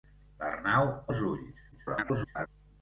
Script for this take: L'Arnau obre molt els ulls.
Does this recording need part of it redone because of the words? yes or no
yes